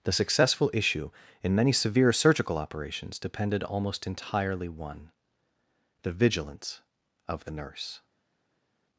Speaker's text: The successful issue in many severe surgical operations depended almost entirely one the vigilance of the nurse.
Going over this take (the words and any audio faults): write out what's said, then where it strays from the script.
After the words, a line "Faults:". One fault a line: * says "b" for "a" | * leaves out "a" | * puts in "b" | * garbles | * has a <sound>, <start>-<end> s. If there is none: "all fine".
The successful issue in many severe surgical operations depended almost entirely one the vigilance of the nurse.
Faults:
all fine